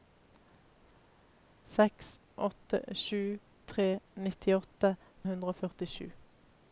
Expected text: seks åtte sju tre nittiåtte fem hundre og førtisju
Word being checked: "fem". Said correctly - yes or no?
no